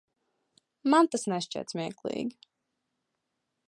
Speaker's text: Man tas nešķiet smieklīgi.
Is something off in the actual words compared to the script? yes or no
no